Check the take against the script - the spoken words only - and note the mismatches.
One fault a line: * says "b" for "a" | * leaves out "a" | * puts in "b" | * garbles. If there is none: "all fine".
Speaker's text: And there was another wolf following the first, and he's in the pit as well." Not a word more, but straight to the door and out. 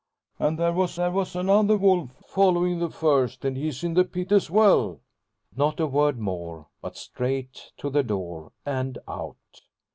* puts in "there was"